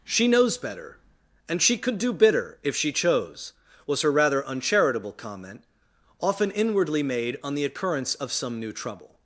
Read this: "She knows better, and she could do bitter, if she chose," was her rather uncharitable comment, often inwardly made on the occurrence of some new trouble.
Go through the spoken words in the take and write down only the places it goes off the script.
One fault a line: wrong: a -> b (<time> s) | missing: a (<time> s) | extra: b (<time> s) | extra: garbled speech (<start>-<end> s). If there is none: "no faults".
no faults